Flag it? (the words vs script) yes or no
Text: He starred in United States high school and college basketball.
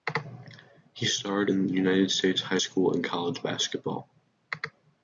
no